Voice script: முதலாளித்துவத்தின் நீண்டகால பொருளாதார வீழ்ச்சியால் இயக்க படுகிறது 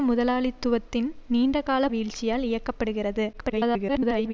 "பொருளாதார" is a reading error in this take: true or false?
true